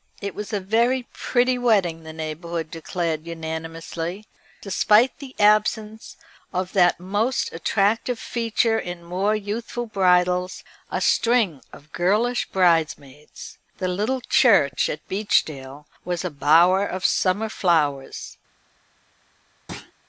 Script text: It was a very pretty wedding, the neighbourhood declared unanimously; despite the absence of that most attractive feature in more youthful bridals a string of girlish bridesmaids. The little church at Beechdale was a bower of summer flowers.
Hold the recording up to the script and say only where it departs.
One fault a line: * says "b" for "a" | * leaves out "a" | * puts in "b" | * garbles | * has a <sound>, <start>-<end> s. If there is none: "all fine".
* has a thud, 19.7-19.9 s